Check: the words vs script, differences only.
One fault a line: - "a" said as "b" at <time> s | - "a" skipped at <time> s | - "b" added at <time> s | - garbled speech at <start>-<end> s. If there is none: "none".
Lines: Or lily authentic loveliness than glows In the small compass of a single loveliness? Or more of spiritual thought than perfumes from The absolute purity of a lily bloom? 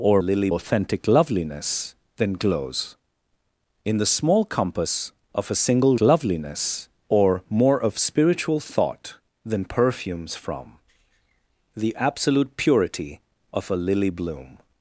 none